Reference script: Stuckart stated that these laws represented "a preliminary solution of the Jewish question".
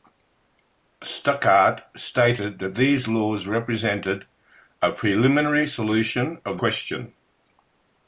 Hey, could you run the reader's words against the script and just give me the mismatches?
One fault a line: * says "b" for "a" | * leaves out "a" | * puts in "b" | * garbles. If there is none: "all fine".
* leaves out "the Jewish"